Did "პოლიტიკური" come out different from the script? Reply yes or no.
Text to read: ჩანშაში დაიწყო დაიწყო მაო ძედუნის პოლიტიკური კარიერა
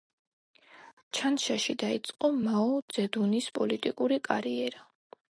no